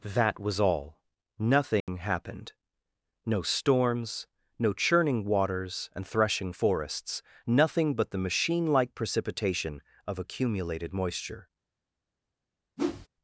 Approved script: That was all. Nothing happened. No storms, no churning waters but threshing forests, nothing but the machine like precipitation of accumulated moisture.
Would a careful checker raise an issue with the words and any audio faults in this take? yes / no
yes